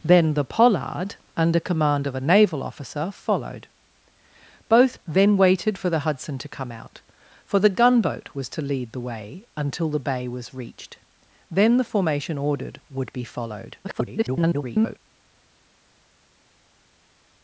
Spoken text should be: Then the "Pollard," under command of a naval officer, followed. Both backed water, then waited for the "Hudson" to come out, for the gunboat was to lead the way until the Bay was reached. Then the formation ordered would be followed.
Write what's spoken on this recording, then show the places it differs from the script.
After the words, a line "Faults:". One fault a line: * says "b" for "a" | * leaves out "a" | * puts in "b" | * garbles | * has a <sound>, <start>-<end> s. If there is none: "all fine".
Then the "Pollard," under command of a naval officer, followed. Both then waited for the "Hudson" to come out, for the gunboat was to lead the way until the Bay was reached. Then the formation ordered would be followed. [garbled]
Faults:
* leaves out "backed water"
* garbles